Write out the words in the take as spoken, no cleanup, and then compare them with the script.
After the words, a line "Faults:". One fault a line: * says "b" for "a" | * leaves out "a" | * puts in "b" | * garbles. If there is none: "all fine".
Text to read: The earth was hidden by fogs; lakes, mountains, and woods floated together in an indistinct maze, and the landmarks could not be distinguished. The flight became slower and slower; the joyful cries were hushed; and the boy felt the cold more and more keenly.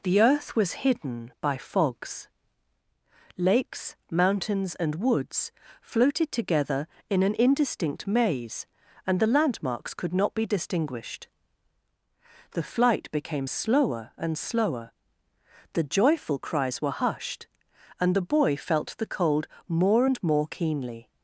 The earth was hidden by fogs; lakes, mountains, and woods floated together in an indistinct maze, and the landmarks could not be distinguished. The flight became slower and slower; the joyful cries were hushed; and the boy felt the cold more and more keenly.
Faults:
all fine